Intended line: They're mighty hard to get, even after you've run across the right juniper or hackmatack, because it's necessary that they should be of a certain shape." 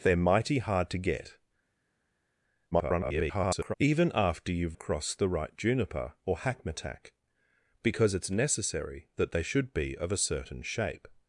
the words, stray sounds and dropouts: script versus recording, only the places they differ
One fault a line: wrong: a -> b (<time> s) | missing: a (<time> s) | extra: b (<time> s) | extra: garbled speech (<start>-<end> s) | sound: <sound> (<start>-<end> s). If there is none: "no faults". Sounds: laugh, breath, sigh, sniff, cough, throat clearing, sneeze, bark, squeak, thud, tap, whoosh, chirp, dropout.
extra: garbled speech (2.7-3.7 s)
missing: run (4.8 s)